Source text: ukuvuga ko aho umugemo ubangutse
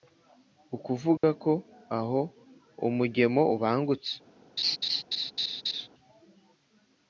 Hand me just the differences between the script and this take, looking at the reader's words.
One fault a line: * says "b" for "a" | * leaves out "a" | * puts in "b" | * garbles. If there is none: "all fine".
all fine